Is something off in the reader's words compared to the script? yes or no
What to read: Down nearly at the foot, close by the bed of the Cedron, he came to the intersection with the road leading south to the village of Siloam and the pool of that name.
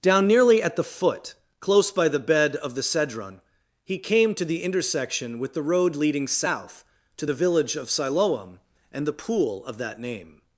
no